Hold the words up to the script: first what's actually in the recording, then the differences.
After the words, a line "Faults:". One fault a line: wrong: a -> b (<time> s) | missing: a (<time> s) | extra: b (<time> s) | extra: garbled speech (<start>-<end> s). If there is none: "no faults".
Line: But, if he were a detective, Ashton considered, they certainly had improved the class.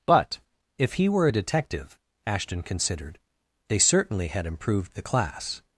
But, if he were a detective, Ashton considered, they certainly had improved the class.
Faults:
no faults